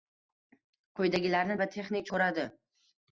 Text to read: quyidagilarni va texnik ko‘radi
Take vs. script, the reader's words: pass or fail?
pass